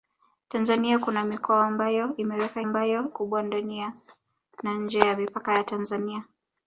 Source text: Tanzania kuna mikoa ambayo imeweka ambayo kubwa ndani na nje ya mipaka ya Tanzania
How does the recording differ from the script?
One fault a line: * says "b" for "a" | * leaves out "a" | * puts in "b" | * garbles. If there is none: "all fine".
all fine